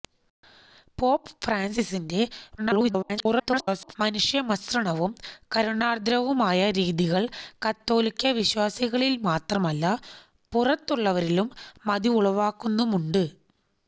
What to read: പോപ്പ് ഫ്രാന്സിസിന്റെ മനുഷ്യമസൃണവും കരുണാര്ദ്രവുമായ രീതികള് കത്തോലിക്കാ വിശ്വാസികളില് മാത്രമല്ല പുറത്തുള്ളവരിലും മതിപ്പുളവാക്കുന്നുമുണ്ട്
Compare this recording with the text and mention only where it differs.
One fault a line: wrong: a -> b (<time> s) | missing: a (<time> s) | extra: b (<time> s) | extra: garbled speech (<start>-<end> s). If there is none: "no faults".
extra: garbled speech (2.6-4.0 s)